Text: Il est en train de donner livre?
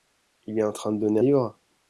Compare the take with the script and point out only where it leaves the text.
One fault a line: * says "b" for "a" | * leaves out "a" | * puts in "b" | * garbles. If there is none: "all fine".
all fine